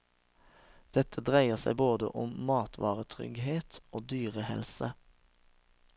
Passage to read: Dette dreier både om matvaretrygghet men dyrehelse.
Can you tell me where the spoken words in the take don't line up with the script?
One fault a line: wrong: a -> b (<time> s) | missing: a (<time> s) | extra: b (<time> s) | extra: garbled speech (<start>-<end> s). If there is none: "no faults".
extra: seg (1.6 s)
wrong: men -> og (3.9 s)